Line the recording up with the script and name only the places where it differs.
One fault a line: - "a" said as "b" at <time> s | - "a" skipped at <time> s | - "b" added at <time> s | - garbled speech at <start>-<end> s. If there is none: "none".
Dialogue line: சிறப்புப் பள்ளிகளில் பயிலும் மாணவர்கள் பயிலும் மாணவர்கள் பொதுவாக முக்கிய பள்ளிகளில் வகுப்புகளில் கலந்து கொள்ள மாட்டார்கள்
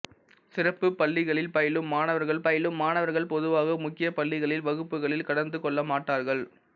none